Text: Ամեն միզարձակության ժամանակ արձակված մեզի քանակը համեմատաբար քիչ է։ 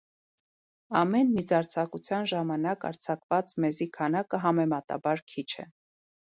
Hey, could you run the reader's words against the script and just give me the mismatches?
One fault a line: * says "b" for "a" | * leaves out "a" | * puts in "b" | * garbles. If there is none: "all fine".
all fine